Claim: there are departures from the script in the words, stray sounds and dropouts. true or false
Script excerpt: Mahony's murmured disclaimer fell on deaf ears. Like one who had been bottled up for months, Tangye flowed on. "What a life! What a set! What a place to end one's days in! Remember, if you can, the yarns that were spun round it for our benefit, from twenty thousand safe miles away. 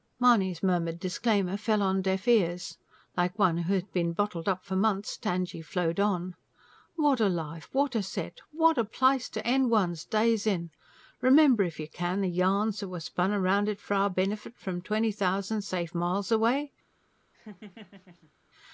true